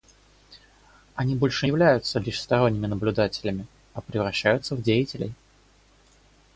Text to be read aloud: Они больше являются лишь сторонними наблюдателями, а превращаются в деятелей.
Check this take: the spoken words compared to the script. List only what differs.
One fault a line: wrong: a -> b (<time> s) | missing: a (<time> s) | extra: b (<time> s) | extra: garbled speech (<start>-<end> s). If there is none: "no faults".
no faults